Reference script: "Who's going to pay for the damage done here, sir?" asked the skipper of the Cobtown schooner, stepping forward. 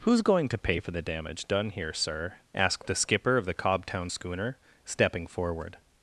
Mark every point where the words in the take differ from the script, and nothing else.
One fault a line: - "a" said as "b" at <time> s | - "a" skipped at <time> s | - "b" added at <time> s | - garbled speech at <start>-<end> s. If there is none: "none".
none